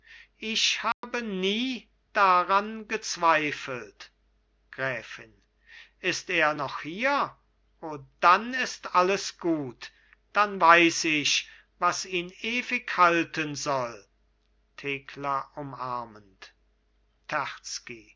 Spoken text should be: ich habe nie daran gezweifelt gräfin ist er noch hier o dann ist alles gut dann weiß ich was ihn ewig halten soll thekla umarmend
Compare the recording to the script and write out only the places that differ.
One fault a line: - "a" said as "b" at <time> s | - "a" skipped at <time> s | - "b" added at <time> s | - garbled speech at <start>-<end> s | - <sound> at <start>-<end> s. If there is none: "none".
- dropout at 0.9-1.0 s